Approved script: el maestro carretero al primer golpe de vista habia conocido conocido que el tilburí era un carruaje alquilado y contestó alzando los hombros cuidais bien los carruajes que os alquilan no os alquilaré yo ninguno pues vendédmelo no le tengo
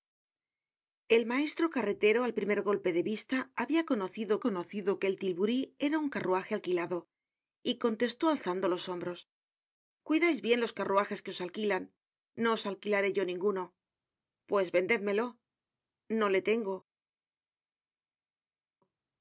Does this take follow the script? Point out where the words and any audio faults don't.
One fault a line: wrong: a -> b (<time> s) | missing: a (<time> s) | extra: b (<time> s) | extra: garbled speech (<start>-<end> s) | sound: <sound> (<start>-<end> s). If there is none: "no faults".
no faults